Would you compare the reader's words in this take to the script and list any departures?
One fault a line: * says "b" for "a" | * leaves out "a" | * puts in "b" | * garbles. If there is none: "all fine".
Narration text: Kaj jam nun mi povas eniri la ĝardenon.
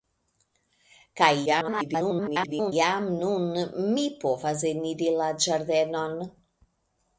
* garbles